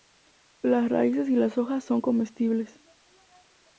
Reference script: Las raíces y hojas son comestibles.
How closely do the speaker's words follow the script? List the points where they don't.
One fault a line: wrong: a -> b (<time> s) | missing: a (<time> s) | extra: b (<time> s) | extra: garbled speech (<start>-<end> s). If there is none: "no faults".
extra: las (1.4 s)